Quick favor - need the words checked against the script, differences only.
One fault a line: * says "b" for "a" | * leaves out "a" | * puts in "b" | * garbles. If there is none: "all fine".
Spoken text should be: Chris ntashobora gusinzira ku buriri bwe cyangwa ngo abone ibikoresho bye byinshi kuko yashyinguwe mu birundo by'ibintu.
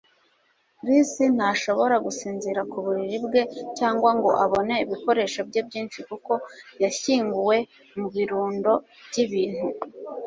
all fine